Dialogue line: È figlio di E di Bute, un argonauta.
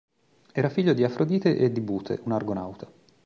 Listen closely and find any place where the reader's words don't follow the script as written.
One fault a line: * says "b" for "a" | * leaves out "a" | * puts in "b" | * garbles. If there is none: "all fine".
* says "Era" for "È"
* puts in "Afrodite"